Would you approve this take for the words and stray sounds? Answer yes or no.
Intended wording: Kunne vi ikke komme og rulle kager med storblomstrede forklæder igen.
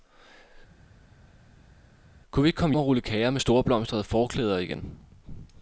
yes